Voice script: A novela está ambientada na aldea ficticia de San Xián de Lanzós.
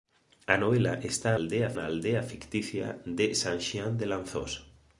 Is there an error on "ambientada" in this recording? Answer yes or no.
yes